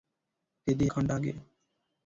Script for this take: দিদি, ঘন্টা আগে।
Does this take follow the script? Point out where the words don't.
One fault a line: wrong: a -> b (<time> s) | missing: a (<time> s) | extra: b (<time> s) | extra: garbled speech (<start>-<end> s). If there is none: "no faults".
no faults